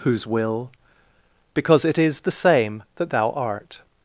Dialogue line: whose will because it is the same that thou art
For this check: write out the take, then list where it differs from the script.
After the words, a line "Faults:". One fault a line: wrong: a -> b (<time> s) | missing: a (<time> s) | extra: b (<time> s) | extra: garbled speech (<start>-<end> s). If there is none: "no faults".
whose will because it is the same that thou art
Faults:
no faults